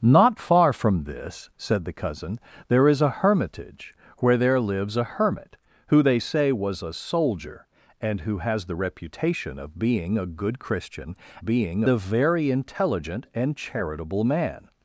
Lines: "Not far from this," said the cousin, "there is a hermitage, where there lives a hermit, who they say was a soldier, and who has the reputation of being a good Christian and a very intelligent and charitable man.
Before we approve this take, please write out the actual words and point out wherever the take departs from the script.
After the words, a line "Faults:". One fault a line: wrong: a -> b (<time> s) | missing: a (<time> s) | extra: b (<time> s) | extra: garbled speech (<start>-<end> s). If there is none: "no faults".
"Not far from this," said the cousin, "there is a hermitage, where there lives a hermit, who they say was a soldier, and who has the reputation of being a good Christian being a very intelligent and charitable man.
Faults:
wrong: and -> being (11.4 s)